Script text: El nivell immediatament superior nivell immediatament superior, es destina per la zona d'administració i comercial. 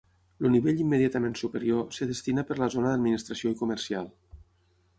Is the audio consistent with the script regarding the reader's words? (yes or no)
no